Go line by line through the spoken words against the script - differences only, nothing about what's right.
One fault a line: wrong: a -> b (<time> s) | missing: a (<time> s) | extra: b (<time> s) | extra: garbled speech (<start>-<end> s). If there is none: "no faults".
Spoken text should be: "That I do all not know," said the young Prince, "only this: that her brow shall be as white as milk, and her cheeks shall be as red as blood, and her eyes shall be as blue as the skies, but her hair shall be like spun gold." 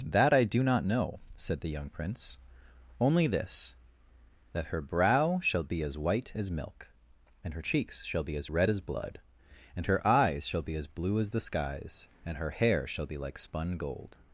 missing: all (0.6 s)
wrong: but -> and (12.2 s)